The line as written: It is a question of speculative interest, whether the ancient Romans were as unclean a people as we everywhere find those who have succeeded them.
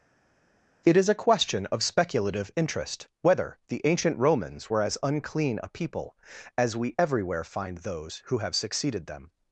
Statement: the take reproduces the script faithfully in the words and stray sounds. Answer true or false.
true